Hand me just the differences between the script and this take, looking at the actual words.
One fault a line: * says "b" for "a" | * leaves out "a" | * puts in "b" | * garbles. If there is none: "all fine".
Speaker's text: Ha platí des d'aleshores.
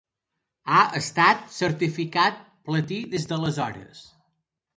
* puts in "estat certificat"